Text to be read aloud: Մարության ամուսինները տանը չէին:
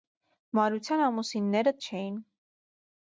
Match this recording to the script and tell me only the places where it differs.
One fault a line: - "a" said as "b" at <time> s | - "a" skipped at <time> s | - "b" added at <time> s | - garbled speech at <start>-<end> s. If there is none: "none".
- "տանը" skipped at 1.8 s